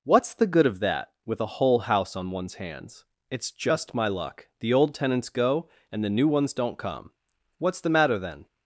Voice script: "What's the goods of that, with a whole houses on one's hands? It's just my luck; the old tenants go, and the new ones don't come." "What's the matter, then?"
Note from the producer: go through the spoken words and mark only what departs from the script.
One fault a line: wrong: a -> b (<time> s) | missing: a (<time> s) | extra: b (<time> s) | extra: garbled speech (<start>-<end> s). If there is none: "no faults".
wrong: goods -> good (0.5 s)
wrong: houses -> house (1.8 s)